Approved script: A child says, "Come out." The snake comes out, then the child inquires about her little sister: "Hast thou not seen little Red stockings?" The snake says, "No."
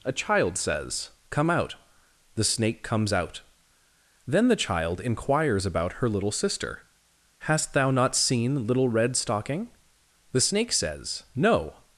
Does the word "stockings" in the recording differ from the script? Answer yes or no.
yes